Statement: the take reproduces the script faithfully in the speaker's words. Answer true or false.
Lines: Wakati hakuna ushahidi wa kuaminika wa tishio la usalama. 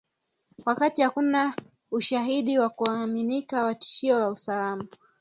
true